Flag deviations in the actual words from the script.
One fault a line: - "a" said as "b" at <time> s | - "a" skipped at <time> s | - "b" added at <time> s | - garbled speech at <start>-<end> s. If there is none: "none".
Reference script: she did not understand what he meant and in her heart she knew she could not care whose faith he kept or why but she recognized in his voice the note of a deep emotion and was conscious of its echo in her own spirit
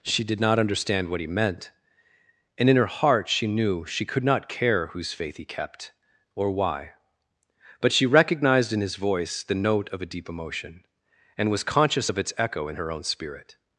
none